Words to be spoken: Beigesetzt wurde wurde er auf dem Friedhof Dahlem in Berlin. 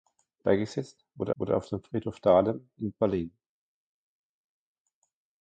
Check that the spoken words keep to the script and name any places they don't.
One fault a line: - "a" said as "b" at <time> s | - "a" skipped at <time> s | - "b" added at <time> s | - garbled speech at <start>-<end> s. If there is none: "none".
none